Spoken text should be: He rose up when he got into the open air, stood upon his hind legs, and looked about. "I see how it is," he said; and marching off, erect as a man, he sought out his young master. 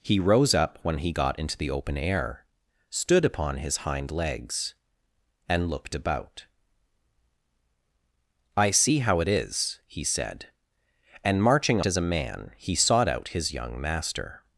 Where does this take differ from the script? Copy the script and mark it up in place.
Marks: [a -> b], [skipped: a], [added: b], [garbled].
He rose up when he got into the open air, stood upon his hind legs, and looked about. "I see how it is," he said; and marching [skipped: off, erect] as a man, he sought out his young master.